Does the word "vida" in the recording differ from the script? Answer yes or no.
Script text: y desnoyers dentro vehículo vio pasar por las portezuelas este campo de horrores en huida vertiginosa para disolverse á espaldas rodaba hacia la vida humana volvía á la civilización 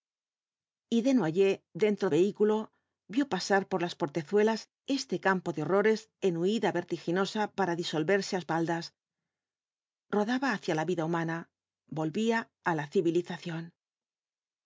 no